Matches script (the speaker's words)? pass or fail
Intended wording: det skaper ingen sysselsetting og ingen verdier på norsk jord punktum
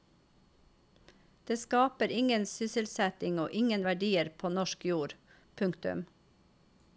pass